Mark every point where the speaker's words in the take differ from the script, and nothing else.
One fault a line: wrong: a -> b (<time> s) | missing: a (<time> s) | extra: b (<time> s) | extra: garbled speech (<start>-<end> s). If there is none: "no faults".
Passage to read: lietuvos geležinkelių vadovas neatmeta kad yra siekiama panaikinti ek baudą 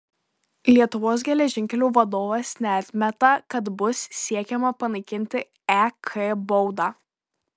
wrong: yra -> bus (3.8 s)